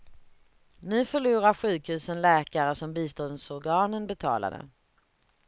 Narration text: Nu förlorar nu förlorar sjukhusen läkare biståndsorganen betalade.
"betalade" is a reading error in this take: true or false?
false